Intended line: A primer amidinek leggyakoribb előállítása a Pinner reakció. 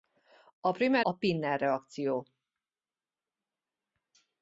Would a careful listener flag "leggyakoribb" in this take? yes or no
yes